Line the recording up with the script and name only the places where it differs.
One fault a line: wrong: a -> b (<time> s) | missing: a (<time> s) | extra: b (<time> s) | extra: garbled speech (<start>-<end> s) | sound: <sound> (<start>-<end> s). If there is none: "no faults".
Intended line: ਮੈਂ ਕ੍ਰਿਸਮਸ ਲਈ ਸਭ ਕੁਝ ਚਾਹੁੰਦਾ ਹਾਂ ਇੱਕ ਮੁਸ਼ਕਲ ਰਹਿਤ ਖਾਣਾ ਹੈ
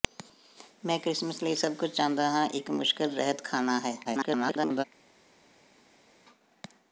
extra: garbled speech (4.0-4.8 s)